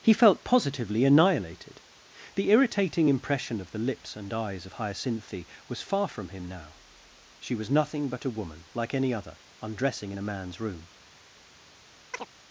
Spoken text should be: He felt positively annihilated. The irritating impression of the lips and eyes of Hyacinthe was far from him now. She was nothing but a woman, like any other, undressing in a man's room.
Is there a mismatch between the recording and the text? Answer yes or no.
no